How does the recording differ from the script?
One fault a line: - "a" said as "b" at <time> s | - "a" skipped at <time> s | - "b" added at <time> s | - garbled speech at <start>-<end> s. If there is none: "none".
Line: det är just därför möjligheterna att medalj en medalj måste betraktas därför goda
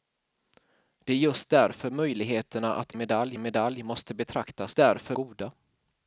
none